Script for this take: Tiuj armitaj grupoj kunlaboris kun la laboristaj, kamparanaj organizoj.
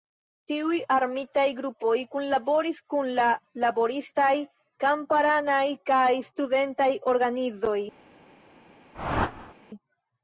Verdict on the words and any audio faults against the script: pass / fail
fail